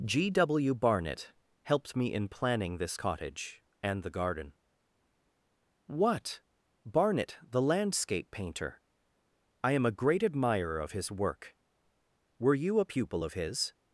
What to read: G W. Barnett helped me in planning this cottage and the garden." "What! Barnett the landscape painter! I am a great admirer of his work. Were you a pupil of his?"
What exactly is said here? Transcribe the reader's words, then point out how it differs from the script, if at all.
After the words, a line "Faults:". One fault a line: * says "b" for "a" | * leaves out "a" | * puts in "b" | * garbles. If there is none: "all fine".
G W. Barnett helped me in planning this cottage and the garden." "What! Barnett the landscape painter! I am a great admirer of his work. Were you a pupil of his?"
Faults:
all fine